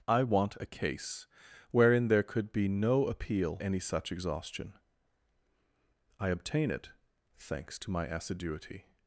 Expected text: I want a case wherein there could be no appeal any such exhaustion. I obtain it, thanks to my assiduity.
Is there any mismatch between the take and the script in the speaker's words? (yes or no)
no